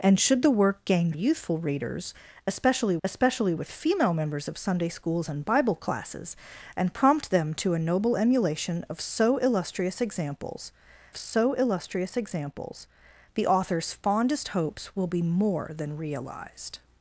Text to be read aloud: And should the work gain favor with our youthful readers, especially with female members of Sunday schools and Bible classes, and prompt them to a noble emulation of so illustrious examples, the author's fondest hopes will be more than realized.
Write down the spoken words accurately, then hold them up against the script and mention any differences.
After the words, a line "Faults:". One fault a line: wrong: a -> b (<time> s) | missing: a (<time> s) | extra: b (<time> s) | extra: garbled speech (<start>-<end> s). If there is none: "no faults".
And should the work gain youthful readers, especially especially with female members of Sunday schools and Bible classes, and prompt them to a noble emulation of so illustrious examples so illustrious examples, the author's fondest hopes will be more than realized.
Faults:
missing: favor with our (1.1 s)
extra: especially (3.0 s)
extra: so illustrious examples (11.1 s)